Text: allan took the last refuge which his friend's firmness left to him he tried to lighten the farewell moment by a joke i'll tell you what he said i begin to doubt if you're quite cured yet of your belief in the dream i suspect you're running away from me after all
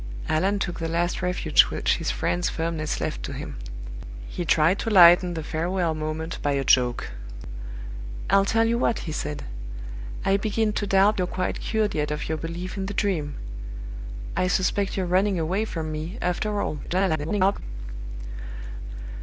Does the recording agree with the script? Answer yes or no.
no